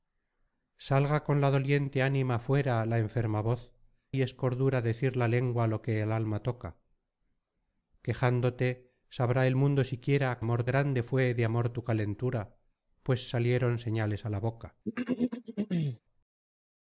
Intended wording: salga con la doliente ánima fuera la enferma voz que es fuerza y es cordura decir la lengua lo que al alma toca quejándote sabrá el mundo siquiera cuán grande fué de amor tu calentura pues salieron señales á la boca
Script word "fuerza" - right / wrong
wrong